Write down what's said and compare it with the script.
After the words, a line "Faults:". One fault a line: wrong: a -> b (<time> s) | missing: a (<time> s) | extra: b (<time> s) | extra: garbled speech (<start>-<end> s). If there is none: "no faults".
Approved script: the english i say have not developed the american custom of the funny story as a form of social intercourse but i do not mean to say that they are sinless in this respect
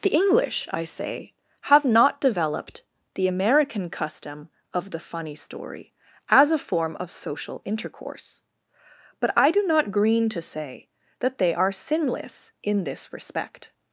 the english i say have not developed the american custom of the funny story as a form of social intercourse but i do not green to say that they are sinless in this respect
Faults:
wrong: mean -> green (9.9 s)